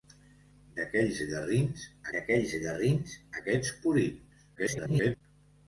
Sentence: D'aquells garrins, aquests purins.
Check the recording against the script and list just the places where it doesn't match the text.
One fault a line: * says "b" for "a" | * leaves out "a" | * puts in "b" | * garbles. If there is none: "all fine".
* puts in "d'aquells garrins"
* garbles